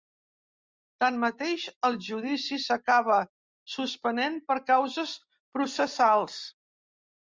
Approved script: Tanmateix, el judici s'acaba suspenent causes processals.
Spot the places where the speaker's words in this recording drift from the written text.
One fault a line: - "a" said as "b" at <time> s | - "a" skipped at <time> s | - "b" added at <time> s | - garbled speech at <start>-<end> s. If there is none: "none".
- "per" added at 4.5 s